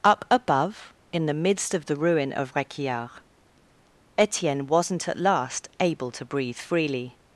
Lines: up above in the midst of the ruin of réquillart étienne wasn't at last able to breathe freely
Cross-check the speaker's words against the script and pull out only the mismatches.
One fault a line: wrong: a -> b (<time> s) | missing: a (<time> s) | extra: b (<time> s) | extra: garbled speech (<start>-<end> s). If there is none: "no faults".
no faults